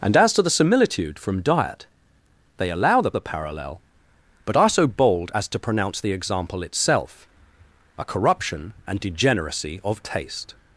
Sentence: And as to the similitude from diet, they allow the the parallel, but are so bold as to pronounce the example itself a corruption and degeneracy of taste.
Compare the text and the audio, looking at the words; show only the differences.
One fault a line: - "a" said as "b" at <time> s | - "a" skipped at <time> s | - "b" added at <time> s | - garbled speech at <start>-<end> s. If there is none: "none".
none